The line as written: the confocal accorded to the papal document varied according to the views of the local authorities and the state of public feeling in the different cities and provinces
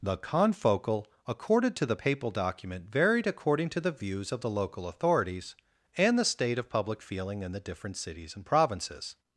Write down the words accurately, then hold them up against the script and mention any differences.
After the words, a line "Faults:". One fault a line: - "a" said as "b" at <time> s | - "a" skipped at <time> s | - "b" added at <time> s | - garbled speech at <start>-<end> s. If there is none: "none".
the confocal accorded to the papal document varied according to the views of the local authorities and the state of public feeling in the different cities and provinces
Faults:
none